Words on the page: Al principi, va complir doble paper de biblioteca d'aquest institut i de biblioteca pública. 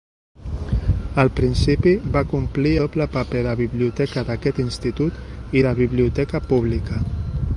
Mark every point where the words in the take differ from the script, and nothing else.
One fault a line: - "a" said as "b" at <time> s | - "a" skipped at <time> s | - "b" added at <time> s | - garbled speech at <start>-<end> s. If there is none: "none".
none